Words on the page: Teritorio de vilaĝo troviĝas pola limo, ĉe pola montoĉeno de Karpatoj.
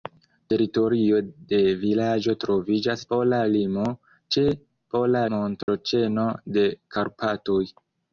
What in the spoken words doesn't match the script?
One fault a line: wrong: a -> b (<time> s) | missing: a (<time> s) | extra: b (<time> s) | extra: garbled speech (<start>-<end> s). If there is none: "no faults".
no faults